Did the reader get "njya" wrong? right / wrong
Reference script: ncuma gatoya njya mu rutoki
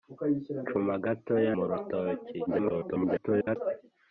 wrong